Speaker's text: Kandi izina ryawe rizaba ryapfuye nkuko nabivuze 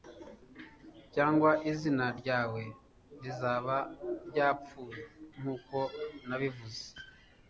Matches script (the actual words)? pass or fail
fail